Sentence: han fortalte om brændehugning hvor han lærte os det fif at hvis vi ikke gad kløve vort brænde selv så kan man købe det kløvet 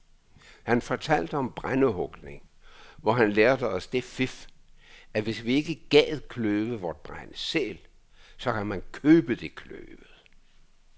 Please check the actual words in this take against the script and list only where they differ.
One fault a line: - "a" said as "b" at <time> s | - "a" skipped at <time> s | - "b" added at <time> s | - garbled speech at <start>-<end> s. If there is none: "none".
none